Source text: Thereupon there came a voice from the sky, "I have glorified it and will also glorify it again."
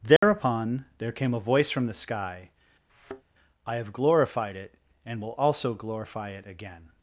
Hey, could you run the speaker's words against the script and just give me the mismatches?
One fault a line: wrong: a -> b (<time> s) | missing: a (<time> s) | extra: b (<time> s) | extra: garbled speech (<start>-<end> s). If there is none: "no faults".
no faults